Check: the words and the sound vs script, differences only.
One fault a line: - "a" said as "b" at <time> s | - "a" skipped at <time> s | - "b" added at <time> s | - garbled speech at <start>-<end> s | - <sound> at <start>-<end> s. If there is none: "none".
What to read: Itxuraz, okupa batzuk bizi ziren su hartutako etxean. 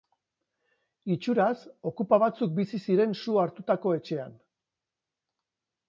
none